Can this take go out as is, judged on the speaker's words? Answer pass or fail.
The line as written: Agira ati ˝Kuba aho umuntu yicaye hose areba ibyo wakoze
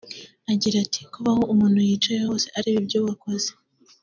pass